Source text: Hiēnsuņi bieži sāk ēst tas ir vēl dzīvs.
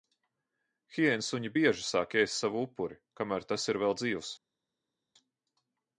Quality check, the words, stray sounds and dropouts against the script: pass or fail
fail